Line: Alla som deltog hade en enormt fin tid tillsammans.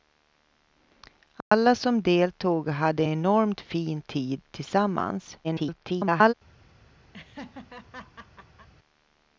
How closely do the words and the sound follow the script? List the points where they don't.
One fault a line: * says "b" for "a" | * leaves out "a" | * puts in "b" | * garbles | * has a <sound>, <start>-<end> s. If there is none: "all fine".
* has a dropout, 1.4-1.5 s
* leaves out "en"
* garbles
* has a laugh, 7.1-8.7 s